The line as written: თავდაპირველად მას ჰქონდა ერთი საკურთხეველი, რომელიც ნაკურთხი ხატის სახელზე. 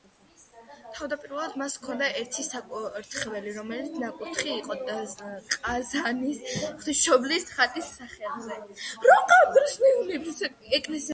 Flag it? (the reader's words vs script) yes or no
yes